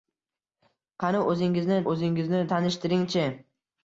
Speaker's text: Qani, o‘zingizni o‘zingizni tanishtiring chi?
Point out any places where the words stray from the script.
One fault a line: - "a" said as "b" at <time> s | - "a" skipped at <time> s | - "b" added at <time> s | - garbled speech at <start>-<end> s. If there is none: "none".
none